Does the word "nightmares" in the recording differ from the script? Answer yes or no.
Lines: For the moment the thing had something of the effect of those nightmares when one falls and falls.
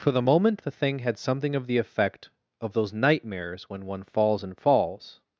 no